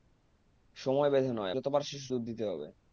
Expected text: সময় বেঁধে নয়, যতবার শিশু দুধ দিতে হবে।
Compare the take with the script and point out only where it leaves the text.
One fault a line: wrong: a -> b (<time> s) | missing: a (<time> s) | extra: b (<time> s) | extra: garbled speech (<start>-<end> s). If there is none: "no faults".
no faults